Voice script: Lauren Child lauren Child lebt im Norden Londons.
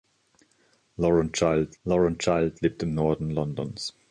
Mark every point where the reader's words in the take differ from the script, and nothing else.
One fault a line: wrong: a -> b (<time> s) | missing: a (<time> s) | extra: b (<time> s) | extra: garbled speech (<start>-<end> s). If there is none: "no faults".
no faults